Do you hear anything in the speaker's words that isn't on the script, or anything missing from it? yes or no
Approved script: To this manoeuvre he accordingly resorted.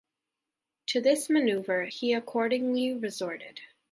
no